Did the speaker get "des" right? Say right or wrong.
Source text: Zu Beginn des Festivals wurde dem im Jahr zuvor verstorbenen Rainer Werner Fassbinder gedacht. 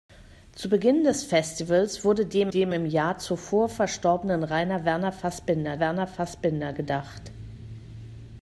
right